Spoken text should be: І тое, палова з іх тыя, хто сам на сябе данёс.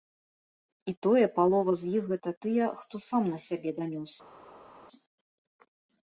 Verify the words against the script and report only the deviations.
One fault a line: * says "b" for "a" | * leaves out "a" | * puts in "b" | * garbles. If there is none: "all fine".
* puts in "гэта"